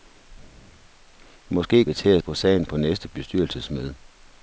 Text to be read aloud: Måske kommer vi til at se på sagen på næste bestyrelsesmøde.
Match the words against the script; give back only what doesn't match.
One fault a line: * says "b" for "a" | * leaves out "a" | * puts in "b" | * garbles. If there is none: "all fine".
* leaves out "kommer"
* leaves out "se"